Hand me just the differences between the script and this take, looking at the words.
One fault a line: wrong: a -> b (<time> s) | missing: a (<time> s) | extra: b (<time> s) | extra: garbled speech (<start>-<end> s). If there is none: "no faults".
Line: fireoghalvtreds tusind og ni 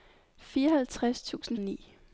no faults